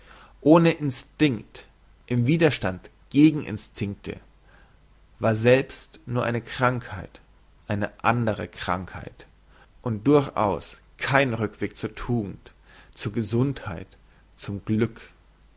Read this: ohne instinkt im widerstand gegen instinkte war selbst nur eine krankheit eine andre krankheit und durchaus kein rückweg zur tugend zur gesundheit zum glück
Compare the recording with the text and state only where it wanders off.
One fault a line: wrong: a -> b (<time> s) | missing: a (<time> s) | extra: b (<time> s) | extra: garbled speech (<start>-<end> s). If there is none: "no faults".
no faults